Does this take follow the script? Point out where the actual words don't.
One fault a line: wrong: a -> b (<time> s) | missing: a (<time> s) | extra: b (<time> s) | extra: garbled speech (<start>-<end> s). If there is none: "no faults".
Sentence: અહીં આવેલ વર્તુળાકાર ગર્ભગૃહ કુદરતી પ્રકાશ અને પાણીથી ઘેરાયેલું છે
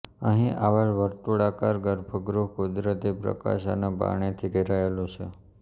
no faults